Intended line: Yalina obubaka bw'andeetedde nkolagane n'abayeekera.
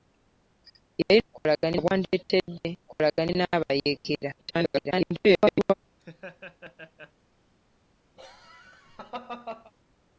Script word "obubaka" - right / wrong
wrong